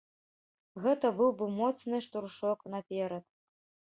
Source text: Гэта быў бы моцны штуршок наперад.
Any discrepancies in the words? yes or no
no